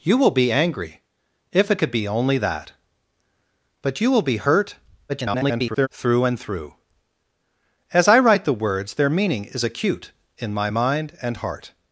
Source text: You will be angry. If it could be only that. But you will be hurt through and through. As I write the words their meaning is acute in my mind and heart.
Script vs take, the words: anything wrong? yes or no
yes